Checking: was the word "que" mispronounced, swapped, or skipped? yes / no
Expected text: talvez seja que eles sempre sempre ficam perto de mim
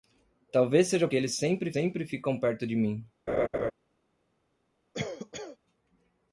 no